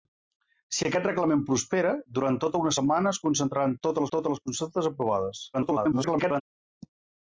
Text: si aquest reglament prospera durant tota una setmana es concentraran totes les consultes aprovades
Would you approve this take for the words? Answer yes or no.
no